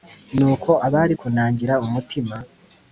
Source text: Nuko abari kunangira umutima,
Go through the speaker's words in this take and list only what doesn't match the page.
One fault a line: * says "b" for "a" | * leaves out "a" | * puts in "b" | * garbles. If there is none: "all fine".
all fine